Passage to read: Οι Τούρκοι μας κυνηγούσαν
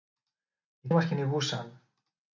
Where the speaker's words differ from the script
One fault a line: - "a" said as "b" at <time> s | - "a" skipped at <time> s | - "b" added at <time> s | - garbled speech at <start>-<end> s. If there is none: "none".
- "Τούρκοι" skipped at 0.9 s